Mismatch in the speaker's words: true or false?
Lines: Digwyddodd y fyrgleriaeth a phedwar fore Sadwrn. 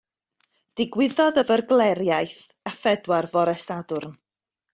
false